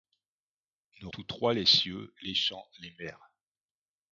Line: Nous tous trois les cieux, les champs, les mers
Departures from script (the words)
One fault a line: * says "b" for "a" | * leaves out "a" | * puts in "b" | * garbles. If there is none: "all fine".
all fine